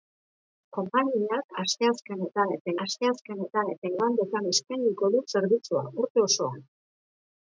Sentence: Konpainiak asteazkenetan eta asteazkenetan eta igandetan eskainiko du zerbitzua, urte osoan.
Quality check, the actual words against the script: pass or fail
pass